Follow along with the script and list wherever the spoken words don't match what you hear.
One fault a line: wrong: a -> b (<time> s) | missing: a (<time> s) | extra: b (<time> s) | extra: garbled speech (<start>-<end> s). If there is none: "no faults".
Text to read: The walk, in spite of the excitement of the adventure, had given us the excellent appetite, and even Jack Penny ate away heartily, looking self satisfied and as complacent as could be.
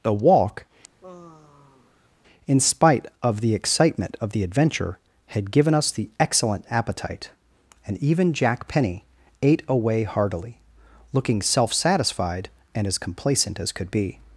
no faults